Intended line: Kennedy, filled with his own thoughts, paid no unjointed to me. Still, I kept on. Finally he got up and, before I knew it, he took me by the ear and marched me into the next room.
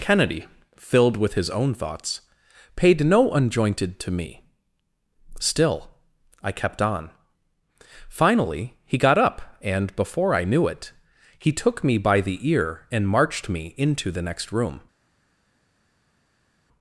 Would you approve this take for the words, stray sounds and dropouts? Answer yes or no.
yes